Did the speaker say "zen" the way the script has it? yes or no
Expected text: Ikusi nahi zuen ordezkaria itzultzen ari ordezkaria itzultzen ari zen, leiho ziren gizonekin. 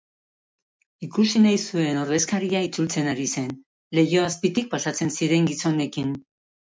no